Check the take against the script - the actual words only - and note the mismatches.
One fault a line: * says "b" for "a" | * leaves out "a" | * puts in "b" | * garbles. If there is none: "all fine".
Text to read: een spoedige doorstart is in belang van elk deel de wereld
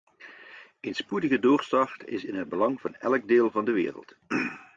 * puts in "het"
* puts in "van"